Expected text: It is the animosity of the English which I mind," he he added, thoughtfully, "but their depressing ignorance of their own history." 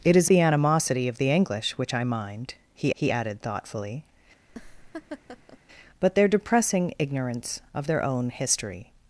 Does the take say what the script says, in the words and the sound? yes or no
no